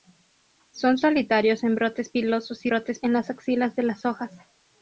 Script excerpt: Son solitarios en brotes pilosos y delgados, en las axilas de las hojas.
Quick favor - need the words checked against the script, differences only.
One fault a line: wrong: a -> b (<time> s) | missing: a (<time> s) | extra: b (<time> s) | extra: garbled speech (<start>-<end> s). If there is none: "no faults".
wrong: delgados -> brotes (2.7 s)